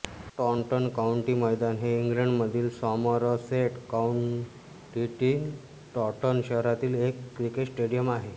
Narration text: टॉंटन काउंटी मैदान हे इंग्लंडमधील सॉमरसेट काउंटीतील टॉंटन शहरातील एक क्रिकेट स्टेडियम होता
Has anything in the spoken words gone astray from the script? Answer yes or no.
yes